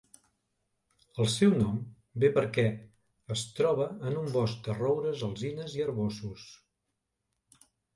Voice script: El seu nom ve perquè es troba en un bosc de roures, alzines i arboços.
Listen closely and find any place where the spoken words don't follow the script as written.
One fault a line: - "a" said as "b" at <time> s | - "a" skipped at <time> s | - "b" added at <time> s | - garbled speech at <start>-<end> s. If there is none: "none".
none